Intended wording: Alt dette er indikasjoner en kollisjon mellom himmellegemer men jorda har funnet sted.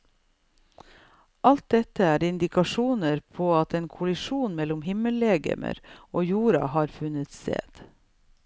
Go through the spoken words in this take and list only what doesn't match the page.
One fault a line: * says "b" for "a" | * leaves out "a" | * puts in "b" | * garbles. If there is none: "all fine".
* puts in "på at"
* says "og" for "men"